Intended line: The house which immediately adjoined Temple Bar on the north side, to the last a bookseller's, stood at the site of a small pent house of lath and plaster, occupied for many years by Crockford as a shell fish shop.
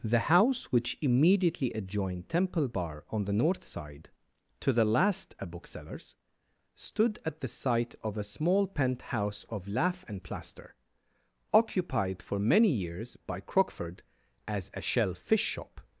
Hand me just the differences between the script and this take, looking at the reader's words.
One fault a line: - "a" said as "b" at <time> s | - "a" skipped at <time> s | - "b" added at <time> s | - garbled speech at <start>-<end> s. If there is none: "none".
none